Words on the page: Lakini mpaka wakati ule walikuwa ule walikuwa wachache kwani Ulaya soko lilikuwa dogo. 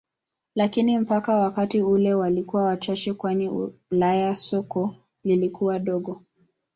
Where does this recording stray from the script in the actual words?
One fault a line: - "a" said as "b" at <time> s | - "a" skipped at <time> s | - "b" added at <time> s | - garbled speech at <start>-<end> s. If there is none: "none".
- "ule walikuwa" skipped at 2.6 s